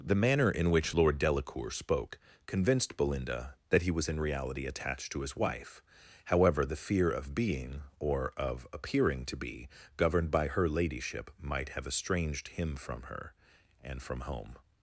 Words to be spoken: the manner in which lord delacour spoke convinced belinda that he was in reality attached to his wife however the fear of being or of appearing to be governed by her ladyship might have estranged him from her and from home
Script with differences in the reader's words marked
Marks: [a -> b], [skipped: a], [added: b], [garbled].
the manner in which lord delacour spoke convinced belinda that he was in reality attached to his wife however the fear of being or of appearing to be governed by her ladyship might have estranged him from her and from home